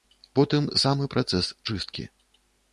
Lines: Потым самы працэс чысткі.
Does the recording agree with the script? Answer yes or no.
yes